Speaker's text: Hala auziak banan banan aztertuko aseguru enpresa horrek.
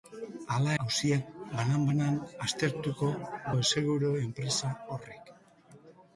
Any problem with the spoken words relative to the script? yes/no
no